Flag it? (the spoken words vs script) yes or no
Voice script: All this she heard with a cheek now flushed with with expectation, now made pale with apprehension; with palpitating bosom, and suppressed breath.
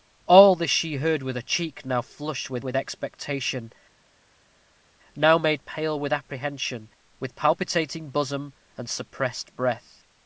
no